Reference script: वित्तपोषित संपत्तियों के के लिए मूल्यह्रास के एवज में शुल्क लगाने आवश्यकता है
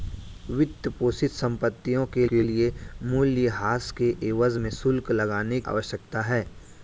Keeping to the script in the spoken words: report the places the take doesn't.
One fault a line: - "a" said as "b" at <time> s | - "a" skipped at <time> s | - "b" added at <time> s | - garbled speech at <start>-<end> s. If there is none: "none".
none